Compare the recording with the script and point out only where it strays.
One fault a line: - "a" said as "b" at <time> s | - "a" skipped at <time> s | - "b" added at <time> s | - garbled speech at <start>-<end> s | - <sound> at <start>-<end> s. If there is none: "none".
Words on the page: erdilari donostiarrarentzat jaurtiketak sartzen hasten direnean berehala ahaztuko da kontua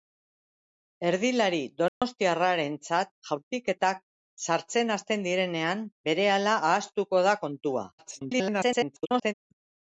- dropout at 1.9-2.0 s
- garbled speech at 8.0-9.3 s